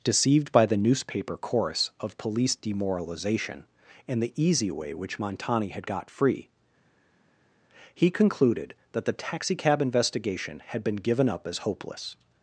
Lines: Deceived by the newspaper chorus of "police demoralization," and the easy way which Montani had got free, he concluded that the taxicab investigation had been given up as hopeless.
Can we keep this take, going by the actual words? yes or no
yes